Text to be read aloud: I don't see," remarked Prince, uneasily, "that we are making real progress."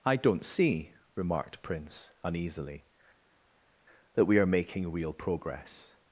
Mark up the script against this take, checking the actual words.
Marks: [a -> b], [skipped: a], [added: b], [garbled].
I don't see," remarked Prince, uneasily, "that we are making real progress."